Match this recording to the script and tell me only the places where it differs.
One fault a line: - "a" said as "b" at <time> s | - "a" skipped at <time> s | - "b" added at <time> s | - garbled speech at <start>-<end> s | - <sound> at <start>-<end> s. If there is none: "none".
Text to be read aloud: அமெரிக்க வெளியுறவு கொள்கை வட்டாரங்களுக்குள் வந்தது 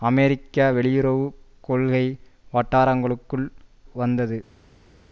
none